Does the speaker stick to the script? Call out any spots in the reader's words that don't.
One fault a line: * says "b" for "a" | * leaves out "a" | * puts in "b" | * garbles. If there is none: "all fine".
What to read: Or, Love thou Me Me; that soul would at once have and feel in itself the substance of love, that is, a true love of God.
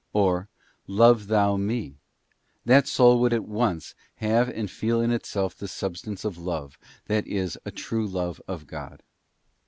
* leaves out "Me"